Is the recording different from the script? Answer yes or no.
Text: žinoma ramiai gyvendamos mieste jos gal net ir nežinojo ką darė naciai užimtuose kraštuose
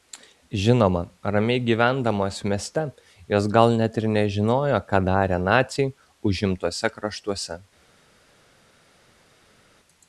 no